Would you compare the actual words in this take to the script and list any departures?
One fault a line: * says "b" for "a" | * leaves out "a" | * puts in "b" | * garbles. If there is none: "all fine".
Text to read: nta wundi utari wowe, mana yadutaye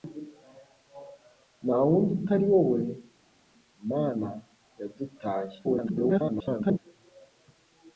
* garbles